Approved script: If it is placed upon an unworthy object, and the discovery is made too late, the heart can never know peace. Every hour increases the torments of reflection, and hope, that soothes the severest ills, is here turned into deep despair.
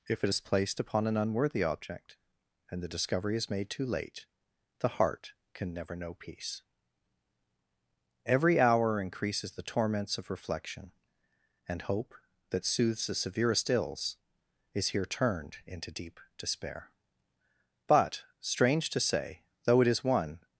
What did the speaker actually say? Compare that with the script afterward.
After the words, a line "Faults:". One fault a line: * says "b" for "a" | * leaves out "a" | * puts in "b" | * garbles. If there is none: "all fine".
If it is placed upon an unworthy object, and the discovery is made too late, the heart can never know peace. Every hour increases the torments of reflection, and hope, that soothes the severest ills, is here turned into deep despair. But, strange to say, though it is one
Faults:
* puts in "But strange to say though it is one"